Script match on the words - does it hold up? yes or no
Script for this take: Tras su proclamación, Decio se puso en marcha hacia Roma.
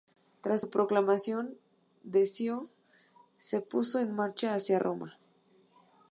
yes